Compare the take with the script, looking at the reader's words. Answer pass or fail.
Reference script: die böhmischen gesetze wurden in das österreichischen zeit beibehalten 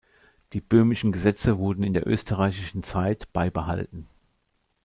fail